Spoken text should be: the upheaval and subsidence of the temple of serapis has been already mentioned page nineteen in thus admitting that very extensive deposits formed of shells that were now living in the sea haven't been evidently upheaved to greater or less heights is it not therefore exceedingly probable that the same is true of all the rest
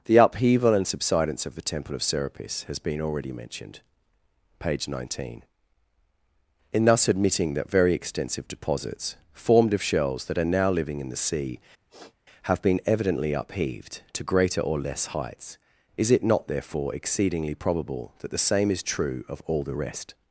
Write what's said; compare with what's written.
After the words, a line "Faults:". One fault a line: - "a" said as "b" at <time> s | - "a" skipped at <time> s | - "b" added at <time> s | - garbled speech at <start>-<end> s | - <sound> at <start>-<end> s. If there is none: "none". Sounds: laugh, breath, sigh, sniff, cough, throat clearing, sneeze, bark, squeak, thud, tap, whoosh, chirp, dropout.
the upheaval and subsidence of the temple of serapis has been already mentioned page nineteen in thus admitting that very extensive deposits formed of shells that are now living in the sea have been evidently upheaved to greater or less heights is it not therefore exceedingly probable that the same is true of all the rest
Faults:
- "were" said as "are" at 10.4 s
- sniff at 11.9-12.2 s
- "haven't" said as "have" at 12.4 s